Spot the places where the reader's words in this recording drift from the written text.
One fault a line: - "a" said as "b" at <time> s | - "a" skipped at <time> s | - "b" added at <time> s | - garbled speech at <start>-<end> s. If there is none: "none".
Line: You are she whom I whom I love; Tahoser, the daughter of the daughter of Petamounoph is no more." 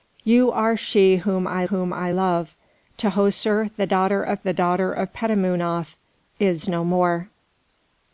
none